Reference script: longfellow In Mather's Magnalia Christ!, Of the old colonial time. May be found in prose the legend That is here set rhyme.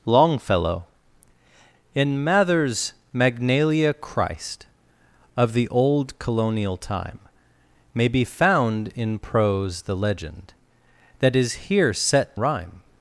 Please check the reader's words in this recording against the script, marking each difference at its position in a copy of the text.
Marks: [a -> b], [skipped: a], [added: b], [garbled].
longfellow In Mather's Magnalia Christ!, Of the old colonial time. May be found in prose the legend That is here set rhyme.